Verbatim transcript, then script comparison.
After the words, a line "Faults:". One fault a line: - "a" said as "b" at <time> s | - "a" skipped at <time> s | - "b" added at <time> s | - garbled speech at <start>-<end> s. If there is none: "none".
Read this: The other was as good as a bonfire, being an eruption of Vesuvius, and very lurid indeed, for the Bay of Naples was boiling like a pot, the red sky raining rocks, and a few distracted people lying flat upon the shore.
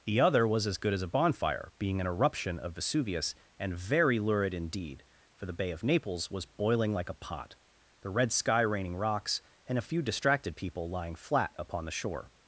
The other was as good as a bonfire, being an eruption of Vesuvius, and very lurid indeed, for the Bay of Naples was boiling like a pot, the red sky raining rocks, and a few distracted people lying flat upon the shore.
Faults:
none